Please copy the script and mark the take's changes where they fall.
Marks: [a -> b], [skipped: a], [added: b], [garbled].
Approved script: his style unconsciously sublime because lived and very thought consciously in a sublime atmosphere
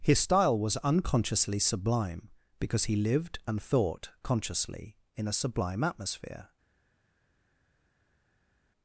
his style [added: was] unconsciously sublime because [added: he] lived and [skipped: very] thought consciously in a sublime atmosphere